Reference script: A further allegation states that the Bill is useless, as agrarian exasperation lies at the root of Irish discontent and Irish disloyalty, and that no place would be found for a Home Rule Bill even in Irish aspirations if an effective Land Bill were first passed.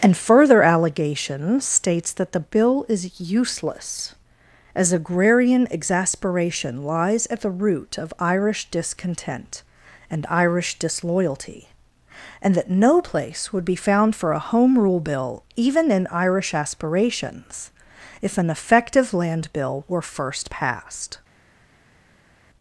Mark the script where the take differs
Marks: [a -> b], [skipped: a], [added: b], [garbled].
[A -> And] further allegation states that the Bill is useless, as agrarian exasperation lies at the root of Irish discontent and Irish disloyalty, and that no place would be found for a Home Rule Bill even in Irish aspirations if an effective Land Bill were first passed.